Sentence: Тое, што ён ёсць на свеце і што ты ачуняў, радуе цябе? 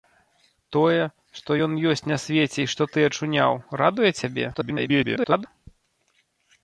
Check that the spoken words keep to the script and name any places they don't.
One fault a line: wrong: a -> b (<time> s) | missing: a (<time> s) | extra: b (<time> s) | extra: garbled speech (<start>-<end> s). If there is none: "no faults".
extra: garbled speech (4.5-5.5 s)